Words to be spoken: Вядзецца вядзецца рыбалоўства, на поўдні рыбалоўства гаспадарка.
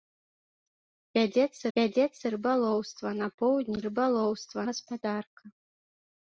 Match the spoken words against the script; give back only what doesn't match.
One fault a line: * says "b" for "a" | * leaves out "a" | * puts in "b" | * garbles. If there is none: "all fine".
all fine